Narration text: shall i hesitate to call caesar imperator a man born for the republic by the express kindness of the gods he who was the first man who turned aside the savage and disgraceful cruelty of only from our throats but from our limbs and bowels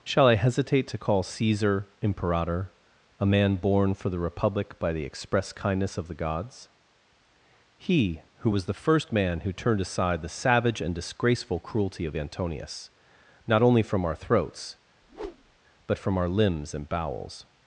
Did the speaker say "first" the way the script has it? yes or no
yes